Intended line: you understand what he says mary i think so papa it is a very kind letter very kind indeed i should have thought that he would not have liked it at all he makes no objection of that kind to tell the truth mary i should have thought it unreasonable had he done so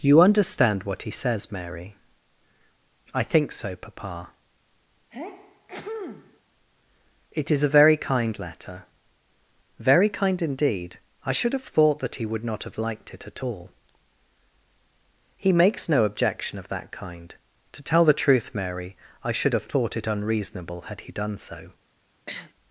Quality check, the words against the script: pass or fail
pass